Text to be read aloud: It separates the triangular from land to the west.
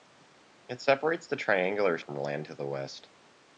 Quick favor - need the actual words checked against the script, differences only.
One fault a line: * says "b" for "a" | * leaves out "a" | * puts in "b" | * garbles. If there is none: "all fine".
all fine